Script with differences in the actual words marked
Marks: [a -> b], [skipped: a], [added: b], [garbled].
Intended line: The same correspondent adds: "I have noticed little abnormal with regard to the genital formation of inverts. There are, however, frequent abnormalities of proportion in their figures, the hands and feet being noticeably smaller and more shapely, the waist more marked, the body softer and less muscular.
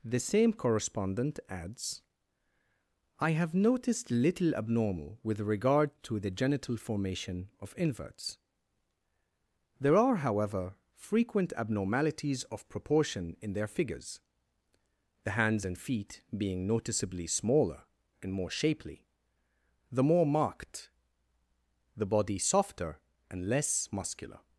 The same correspondent adds: "I have noticed little abnormal with regard to the genital formation of inverts. There are, however, frequent abnormalities of proportion in their figures, the hands and feet being noticeably smaller and more shapely, the [skipped: waist] more marked, the body softer and less muscular.